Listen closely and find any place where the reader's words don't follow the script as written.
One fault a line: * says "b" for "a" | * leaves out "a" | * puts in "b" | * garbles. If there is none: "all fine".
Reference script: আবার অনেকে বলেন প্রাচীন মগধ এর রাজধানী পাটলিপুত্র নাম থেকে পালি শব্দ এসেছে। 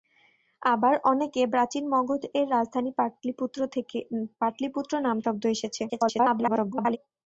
* leaves out "বলেন"
* leaves out "থেকে পালি"
* garbles